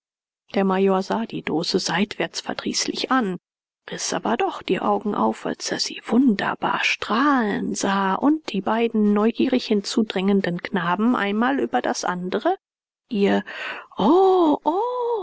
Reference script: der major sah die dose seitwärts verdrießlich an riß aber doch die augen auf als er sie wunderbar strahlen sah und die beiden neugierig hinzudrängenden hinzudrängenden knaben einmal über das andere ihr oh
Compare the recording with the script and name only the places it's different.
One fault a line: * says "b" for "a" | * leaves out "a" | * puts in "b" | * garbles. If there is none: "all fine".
* leaves out "hinzudrängenden"